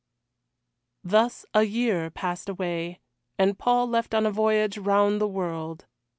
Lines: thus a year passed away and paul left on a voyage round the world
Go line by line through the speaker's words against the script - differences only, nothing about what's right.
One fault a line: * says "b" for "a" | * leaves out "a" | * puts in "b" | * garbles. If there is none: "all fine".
all fine